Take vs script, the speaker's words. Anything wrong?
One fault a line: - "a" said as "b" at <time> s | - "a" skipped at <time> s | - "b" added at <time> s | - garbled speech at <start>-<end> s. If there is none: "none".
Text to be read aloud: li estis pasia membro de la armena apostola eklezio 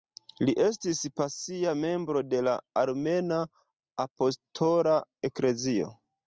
none